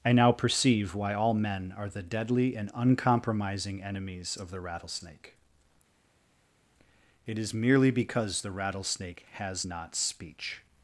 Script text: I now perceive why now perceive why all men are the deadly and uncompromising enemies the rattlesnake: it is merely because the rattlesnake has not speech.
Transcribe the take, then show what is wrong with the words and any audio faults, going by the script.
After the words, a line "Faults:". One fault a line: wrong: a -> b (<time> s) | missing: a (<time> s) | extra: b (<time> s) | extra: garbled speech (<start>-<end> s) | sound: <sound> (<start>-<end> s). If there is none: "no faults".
I now perceive why all men are the deadly and uncompromising enemies of the rattlesnake: it is merely because the rattlesnake has not speech.
Faults:
missing: now perceive why (1.1 s)
extra: of (4.4 s)